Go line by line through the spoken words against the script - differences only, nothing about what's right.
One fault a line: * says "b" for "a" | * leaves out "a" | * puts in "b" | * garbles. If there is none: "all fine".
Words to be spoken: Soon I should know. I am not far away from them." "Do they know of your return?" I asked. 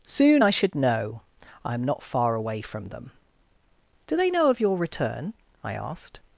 all fine